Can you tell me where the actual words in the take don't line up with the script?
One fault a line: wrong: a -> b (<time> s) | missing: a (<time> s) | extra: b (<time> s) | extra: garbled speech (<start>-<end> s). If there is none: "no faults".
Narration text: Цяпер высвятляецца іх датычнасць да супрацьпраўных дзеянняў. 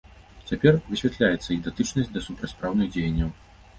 no faults